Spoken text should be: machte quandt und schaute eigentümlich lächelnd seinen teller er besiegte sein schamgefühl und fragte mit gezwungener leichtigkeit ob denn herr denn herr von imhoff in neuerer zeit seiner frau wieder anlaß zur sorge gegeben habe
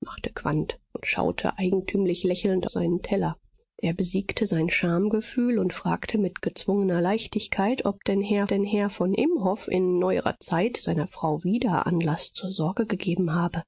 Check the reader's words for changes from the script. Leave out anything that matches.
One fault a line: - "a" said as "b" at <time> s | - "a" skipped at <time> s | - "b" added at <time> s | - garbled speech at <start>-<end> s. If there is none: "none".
none